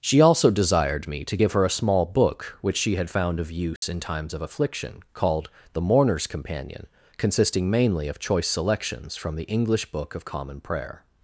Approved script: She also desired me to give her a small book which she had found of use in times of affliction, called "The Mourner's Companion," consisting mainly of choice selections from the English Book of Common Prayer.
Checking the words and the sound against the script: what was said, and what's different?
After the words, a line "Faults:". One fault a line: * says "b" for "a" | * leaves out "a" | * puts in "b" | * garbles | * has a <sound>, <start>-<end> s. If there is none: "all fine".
She also desired me to give her a small book which she had found of use in times of affliction, called "The Mourner's Companion," consisting mainly of choice selections from the English Book of Common Prayer.
Faults:
* has a dropout, 3.8-3.8 s